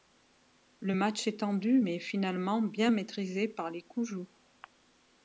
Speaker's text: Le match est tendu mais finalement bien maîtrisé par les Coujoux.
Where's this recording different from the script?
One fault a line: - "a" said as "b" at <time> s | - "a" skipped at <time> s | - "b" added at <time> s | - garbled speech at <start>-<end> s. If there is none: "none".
none